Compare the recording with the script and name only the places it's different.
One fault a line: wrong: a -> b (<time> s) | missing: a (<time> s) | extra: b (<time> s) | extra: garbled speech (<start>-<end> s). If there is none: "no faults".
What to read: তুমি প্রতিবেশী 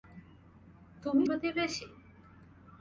no faults